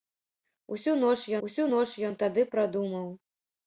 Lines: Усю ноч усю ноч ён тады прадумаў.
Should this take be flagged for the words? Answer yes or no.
no